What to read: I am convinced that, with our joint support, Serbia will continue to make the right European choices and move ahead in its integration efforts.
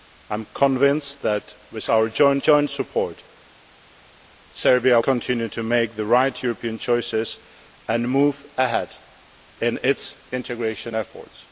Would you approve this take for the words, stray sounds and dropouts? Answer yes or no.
no